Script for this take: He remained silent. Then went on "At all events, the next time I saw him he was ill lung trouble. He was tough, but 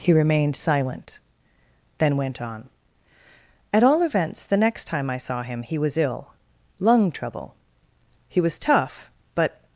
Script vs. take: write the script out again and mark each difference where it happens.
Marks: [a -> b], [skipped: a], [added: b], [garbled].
He remained silent. Then went on "At all events, the next time I saw him he was ill lung trouble. He was tough, but